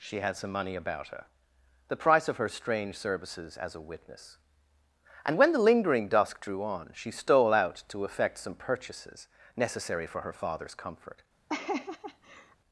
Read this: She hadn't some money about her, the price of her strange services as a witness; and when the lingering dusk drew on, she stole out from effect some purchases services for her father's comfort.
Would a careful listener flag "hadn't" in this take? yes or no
yes